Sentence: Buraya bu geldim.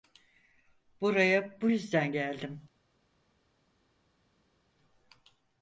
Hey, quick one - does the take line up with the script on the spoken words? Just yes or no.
no